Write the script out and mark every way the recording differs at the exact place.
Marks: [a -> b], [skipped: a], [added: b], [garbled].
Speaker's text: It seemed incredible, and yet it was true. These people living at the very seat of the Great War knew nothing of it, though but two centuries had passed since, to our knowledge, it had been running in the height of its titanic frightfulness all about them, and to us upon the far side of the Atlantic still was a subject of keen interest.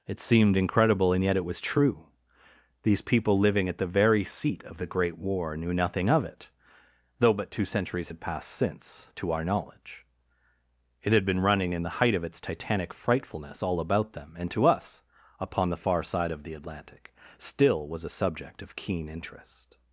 It seemed incredible, and yet it was true. These people living at the very seat of the Great War knew nothing of it, though but two centuries had passed since, to our knowledge, it had been running in the height of its titanic frightfulness all about them, and to us upon the far side of the Atlantic still was a subject of keen interest.